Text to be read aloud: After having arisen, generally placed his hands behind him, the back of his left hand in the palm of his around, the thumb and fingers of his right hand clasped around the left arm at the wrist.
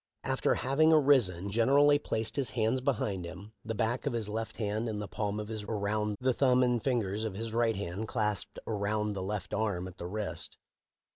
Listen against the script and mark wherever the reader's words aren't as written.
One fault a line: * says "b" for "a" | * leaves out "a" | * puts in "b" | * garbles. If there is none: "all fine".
all fine